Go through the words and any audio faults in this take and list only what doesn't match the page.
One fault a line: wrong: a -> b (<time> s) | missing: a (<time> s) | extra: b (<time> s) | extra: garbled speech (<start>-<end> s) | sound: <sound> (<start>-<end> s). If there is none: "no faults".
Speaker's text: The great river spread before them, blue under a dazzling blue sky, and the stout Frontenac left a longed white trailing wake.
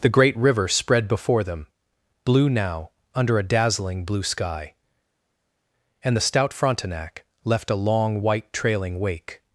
extra: now (2.5 s)
wrong: longed -> long (7.7 s)